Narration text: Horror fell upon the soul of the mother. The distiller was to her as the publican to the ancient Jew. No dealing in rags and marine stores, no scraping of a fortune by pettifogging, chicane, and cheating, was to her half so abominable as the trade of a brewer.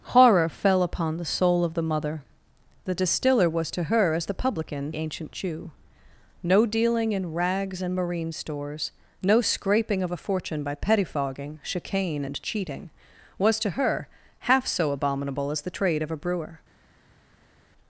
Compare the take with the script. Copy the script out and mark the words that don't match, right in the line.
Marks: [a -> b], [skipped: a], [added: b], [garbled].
Horror fell upon the soul of the mother. The distiller was to her as the publican [skipped: to the] ancient Jew. No dealing in rags and marine stores, no scraping of a fortune by pettifogging, chicane, and cheating, was to her half so abominable as the trade of a brewer.